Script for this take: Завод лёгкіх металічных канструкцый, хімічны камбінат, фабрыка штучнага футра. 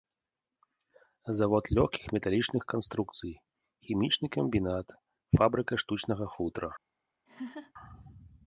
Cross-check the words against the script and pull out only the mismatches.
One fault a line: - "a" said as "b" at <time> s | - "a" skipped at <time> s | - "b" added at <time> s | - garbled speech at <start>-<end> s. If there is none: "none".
none